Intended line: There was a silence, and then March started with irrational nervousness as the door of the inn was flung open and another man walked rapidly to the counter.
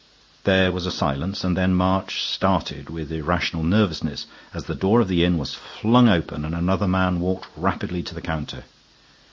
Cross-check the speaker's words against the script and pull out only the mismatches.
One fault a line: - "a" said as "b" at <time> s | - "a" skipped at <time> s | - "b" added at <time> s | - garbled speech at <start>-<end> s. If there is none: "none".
none